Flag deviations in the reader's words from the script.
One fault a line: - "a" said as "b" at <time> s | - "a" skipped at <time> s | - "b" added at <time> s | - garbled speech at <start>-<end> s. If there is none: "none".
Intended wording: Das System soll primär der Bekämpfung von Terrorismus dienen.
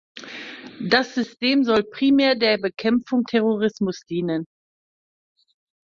- "von" skipped at 3.3 s